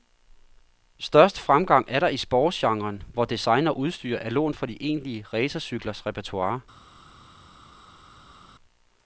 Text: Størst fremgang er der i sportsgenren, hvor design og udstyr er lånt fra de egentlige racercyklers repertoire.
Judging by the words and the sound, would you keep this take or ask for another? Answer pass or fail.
pass